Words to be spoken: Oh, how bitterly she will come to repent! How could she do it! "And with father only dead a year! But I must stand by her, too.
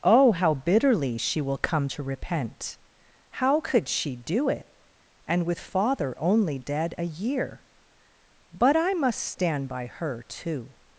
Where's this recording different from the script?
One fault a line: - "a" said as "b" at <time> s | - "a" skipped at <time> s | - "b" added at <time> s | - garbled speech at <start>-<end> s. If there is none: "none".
none